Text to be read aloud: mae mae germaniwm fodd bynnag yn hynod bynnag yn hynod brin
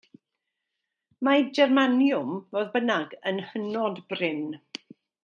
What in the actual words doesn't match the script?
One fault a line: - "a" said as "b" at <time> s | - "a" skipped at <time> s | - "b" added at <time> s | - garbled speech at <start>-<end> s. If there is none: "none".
- "mae" skipped at 1.4 s
- "bynnag yn hynod" skipped at 4.0 s